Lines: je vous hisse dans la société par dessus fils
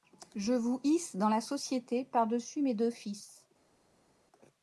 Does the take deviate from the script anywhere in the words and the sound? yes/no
yes